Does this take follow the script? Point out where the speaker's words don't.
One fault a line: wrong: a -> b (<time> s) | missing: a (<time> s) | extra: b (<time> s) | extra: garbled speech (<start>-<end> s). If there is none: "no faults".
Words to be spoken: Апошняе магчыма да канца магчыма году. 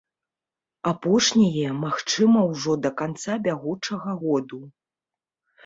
extra: ўжо (2.5 s)
wrong: магчыма -> бягучага (3.5 s)